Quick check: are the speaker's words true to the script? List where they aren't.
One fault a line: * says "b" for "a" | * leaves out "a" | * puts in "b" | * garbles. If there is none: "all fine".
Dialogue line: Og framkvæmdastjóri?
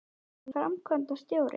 all fine